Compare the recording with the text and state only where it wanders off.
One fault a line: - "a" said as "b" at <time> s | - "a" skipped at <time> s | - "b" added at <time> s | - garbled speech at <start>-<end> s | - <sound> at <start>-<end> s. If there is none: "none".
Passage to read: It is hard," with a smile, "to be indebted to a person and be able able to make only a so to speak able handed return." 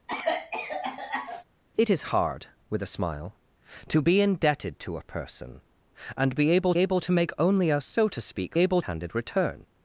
- cough at 0.1-1.4 s